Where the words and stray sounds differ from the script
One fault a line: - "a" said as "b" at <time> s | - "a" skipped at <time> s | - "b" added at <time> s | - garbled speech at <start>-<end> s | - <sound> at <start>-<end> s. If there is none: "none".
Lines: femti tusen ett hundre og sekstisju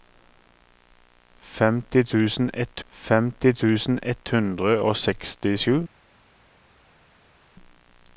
- "femti tusen ett" added at 2.9 s